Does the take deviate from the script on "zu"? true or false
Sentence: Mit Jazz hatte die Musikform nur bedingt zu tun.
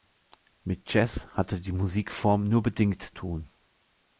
true